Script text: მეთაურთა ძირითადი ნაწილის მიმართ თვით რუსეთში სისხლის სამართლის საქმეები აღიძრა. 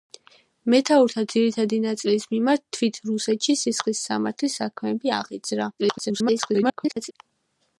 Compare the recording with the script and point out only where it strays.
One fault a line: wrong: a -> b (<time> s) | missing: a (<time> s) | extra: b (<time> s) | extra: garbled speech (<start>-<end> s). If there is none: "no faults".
extra: garbled speech (5.8-7.1 s)